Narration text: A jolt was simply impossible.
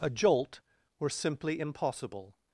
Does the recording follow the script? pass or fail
fail